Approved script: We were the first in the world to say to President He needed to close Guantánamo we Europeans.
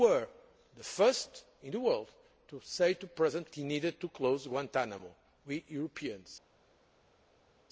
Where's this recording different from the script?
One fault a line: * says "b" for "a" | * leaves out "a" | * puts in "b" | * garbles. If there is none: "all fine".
all fine